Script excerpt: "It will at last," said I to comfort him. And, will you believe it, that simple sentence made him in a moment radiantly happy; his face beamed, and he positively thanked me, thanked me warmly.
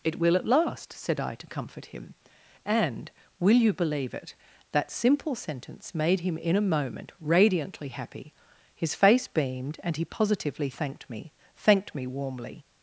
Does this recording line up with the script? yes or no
yes